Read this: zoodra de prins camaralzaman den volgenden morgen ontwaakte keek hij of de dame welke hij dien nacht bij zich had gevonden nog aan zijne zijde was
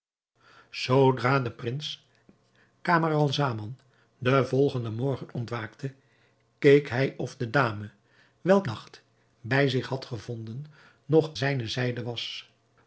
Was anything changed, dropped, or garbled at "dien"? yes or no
yes